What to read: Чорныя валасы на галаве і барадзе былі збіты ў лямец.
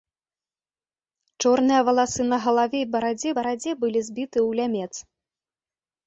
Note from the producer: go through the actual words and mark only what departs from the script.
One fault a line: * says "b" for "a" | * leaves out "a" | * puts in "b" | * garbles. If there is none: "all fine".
* puts in "барадзе"